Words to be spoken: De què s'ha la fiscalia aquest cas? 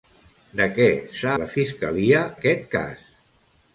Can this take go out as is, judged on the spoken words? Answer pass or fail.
pass